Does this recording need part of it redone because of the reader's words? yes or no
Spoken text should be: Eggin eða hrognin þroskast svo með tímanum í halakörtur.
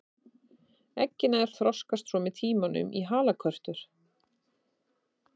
yes